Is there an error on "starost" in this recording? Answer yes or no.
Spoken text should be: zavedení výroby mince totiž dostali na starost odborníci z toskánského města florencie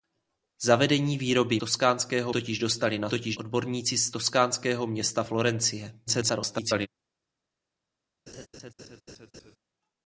yes